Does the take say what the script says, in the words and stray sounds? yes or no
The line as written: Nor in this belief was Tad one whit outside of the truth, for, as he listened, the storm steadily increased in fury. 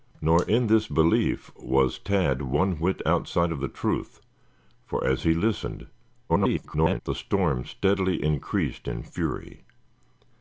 no